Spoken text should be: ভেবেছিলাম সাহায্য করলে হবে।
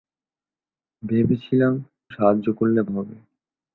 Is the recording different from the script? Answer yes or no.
no